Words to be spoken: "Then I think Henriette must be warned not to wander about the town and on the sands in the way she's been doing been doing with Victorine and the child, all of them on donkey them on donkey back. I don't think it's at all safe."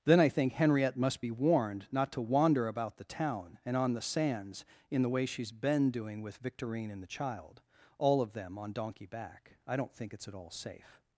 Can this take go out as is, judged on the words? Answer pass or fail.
fail